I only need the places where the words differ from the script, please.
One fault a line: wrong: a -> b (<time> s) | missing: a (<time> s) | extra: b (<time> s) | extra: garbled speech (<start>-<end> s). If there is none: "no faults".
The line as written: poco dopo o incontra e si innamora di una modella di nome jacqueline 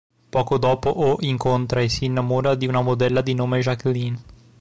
no faults